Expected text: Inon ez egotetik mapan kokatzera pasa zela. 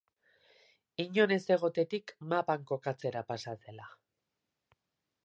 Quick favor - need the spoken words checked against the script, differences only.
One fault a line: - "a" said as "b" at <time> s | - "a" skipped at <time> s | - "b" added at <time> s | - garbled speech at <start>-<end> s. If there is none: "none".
none